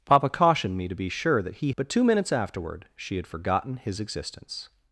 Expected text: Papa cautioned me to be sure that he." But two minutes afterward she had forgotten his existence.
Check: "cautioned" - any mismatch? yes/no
no